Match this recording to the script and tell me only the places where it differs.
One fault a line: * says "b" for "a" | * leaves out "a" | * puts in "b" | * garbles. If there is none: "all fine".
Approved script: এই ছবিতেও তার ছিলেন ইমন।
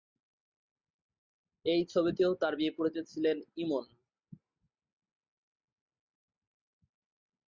* puts in "বিপরীতে"